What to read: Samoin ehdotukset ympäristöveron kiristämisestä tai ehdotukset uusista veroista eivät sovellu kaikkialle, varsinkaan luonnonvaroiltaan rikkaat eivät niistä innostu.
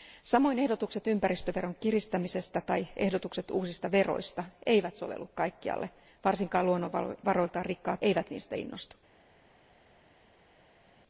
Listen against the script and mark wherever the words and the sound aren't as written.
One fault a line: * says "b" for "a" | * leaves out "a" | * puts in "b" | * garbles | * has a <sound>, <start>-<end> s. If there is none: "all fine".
all fine